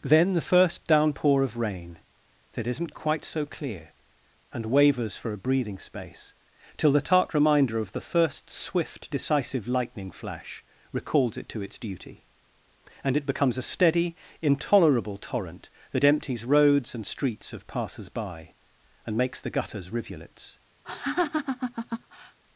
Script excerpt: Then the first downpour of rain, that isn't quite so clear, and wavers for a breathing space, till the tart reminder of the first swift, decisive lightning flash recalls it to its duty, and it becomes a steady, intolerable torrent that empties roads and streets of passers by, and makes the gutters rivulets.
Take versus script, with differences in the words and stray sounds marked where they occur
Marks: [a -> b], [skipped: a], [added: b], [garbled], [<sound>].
Then the first downpour of rain, that isn't quite so clear, and wavers for a breathing space, till the tart reminder of the first swift, decisive lightning flash recalls it to its duty, and it becomes a steady, intolerable torrent that empties roads and streets of passers by, and makes the gutters rivulets. [laugh]